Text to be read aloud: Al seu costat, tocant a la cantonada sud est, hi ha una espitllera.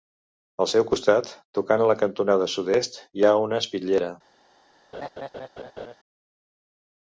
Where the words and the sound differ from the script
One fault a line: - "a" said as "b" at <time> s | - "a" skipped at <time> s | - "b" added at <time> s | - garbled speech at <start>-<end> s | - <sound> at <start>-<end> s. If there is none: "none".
- laugh at 4.9-6.0 s